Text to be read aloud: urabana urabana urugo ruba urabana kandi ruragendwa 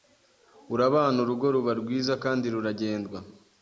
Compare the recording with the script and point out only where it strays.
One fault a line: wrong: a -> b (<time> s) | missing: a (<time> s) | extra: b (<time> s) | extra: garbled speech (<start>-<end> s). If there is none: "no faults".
missing: urabana (1.2 s)
wrong: urabana -> rwiza (1.8 s)